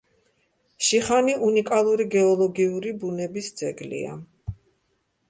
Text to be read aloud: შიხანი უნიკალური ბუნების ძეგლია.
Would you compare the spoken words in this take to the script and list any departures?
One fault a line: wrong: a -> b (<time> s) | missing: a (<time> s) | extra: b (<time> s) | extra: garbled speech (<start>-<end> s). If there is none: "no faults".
extra: გეოლოგიური (2.1 s)